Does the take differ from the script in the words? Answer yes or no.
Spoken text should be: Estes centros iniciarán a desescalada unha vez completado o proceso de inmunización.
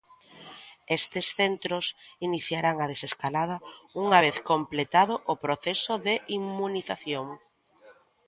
no